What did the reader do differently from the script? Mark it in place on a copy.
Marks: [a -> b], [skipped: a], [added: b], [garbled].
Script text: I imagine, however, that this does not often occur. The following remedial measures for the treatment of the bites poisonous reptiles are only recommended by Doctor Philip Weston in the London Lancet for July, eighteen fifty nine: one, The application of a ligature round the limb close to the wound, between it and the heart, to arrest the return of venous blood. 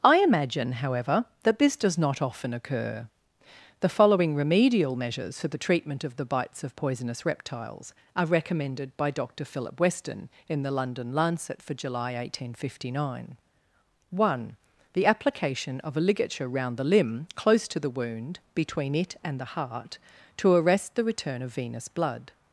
I imagine, however, that this does not often occur. The following remedial measures for the treatment of the bites [added: of] poisonous reptiles are [skipped: only] recommended by Doctor Philip Weston in the London Lancet for July, eighteen fifty nine: one, The application of a ligature round the limb close to the wound, between it and the heart, to arrest the return of venous blood.